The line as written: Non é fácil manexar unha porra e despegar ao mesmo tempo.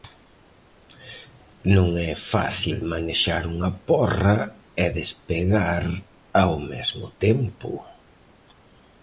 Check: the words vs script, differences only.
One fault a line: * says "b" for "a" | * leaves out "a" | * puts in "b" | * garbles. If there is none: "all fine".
all fine